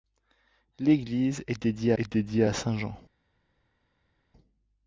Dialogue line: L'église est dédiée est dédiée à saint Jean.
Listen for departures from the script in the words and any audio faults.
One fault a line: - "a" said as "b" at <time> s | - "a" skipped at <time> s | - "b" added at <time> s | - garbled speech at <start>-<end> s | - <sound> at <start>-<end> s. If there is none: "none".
none